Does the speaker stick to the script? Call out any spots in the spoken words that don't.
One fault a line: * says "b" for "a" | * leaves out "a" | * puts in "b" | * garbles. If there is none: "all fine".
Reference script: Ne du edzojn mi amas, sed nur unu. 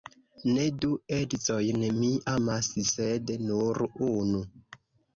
all fine